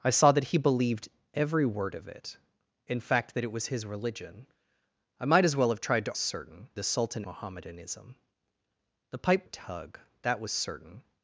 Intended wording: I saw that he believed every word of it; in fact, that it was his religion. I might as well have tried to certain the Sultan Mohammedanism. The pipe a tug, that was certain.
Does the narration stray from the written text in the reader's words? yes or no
no